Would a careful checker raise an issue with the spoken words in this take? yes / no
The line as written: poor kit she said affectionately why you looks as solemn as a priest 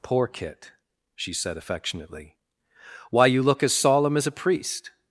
yes